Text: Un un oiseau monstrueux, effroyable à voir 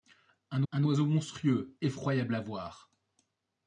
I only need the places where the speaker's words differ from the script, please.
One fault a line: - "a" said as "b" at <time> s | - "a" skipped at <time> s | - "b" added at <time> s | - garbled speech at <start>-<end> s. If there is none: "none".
none